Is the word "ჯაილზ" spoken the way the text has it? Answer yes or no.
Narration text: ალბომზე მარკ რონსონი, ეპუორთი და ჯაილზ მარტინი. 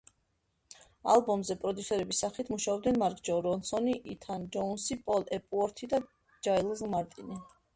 yes